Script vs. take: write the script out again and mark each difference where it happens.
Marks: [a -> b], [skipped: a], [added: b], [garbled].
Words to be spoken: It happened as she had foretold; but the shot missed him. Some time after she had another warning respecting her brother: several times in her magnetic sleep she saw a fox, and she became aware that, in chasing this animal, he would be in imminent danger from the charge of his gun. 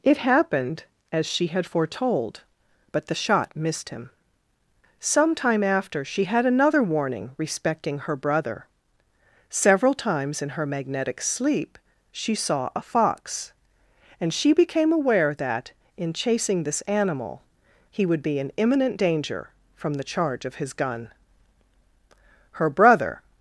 It happened as she had foretold; but the shot missed him. Some time after she had another warning respecting her brother: several times in her magnetic sleep she saw a fox, and she became aware that, in chasing this animal, he would be in imminent danger from the charge of his gun. [added: Her brother]